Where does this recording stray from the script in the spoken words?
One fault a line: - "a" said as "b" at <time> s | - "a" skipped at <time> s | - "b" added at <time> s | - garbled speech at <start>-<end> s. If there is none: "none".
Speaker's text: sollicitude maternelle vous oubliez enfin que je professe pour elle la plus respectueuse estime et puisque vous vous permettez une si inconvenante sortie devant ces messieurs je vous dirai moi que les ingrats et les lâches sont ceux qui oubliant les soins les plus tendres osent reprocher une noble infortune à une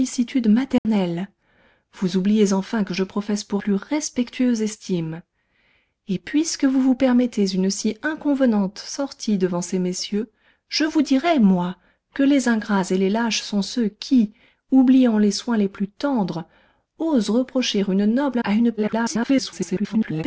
- "elle la" skipped at 3.6 s
- "infortune" skipped at 18.4 s
- garbled speech at 18.8-20.2 s